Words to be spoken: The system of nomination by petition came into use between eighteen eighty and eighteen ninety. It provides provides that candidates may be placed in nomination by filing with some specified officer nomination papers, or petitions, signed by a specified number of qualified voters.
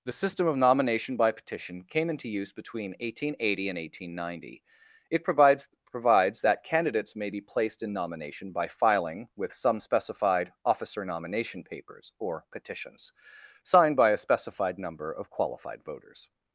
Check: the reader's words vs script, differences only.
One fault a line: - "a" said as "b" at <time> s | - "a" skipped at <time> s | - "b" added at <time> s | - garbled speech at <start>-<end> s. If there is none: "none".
none